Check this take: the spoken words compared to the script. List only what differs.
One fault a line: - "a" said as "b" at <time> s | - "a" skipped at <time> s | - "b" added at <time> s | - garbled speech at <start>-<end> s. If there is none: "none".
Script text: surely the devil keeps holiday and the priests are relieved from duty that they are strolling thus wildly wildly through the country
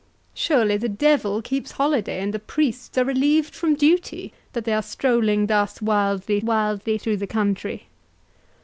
none